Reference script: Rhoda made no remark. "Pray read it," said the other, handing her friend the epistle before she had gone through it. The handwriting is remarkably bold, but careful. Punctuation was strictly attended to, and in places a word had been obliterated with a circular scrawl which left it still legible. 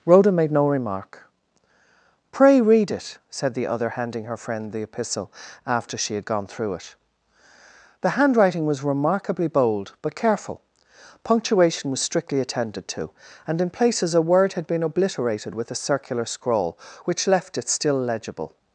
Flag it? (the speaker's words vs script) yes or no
yes